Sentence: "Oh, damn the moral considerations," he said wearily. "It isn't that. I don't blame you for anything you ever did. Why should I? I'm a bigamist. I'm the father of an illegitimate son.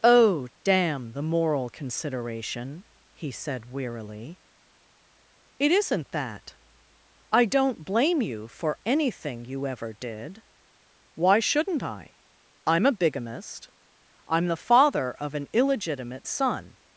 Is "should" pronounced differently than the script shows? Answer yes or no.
yes